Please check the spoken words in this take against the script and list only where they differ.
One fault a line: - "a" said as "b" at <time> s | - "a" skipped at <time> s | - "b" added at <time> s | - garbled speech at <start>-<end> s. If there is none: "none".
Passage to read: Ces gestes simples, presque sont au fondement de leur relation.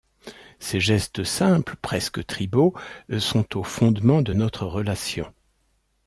- "tribaux" added at 2.2 s
- "leur" said as "notre" at 4.3 s